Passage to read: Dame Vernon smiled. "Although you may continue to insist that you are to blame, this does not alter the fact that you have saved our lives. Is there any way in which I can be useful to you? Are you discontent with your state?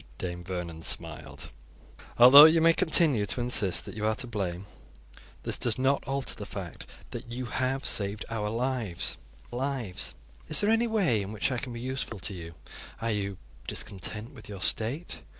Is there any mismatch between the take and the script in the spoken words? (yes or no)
yes